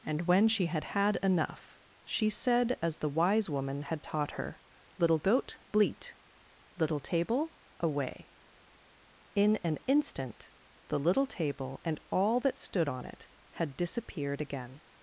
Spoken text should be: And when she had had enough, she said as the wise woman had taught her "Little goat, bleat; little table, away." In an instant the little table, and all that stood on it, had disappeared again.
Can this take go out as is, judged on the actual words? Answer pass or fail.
pass